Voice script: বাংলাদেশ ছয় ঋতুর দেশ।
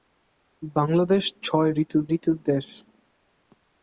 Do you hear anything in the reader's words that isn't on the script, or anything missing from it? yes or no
yes